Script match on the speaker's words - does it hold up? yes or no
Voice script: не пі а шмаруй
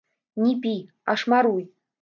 yes